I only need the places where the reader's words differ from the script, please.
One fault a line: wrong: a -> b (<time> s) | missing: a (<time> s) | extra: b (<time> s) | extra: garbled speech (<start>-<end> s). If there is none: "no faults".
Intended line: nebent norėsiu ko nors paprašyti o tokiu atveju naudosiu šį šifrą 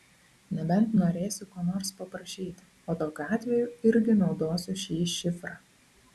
extra: irgi (3.9 s)